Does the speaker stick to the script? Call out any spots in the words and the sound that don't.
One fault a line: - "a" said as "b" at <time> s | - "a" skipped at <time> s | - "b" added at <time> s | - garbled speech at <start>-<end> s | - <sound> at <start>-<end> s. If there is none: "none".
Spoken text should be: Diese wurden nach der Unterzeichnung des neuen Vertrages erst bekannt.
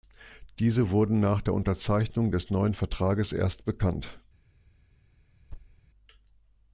- thud at 5.5-5.8 s